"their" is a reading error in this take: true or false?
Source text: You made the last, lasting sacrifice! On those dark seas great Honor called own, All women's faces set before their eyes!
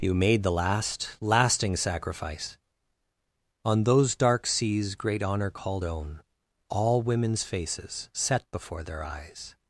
false